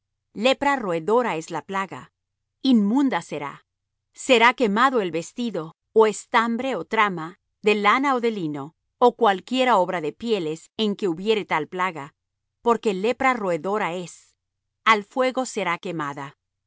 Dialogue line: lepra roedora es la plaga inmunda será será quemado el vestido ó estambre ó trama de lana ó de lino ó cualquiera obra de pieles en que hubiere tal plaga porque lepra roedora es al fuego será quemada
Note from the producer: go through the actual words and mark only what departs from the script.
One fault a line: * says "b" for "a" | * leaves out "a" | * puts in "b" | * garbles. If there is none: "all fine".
all fine